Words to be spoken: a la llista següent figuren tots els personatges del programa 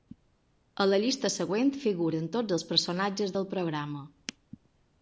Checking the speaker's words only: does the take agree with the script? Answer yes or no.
yes